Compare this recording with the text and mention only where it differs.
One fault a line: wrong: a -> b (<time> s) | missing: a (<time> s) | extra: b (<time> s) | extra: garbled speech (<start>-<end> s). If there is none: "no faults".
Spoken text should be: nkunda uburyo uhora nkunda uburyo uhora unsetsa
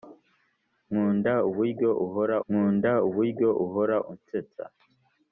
no faults